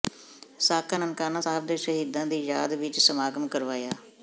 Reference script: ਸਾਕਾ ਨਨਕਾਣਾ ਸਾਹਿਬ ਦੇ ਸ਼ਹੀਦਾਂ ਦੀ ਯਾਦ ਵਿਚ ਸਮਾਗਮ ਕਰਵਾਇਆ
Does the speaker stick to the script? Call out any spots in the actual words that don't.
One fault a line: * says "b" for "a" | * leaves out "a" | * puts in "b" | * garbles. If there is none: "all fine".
all fine